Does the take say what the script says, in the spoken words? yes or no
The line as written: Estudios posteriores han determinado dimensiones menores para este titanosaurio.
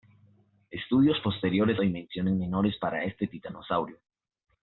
no